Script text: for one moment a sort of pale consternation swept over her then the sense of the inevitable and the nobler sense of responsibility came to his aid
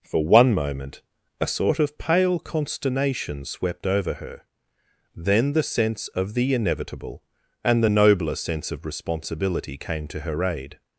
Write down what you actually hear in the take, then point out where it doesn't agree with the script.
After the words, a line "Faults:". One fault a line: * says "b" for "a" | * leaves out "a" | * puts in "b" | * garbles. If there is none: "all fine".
for one moment a sort of pale consternation swept over her then the sense of the inevitable and the nobler sense of responsibility came to her aid
Faults:
* says "her" for "his"